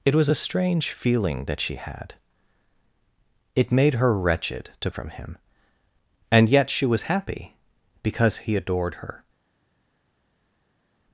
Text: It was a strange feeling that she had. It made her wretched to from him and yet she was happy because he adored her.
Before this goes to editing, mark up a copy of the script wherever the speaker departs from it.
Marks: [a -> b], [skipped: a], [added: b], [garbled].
It was a strange feeling that she had. It made her wretched to from him and yet she was happy because he adored her.